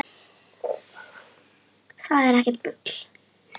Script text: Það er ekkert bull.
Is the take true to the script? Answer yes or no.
yes